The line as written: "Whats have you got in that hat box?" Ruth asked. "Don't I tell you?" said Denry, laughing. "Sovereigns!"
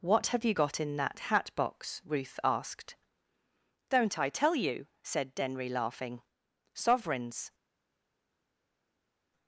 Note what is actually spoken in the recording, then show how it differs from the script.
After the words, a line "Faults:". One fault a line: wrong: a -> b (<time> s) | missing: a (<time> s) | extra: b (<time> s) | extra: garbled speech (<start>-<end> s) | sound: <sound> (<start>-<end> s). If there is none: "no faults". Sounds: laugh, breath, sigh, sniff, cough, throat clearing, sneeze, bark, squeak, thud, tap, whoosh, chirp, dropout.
"What have you got in that hat box?" Ruth asked. "Don't I tell you?" said Denry, laughing. "Sovereigns!"
Faults:
wrong: Whats -> What (0.0 s)